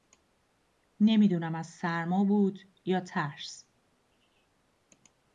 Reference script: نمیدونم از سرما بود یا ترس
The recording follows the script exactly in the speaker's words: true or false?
true